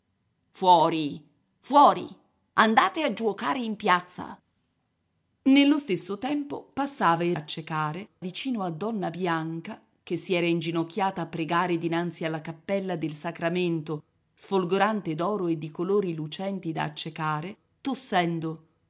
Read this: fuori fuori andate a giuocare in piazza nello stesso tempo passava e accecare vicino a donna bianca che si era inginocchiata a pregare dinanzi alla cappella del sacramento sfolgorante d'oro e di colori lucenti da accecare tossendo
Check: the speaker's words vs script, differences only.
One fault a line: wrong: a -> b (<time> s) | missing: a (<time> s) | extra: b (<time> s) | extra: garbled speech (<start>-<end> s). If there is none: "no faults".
no faults